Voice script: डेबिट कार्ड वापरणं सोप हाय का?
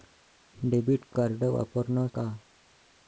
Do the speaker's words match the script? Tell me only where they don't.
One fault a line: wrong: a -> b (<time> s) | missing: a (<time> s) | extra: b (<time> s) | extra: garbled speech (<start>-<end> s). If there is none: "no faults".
missing: सोप हाय (2.1 s)